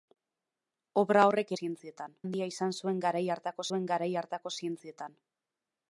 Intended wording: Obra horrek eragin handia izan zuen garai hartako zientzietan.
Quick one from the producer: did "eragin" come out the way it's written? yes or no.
no